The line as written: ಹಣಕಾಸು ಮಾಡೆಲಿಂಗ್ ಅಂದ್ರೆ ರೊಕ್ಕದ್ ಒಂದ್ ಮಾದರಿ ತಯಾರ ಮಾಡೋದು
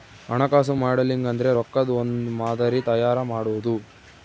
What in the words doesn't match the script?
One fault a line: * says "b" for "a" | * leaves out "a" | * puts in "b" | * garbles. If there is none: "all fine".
all fine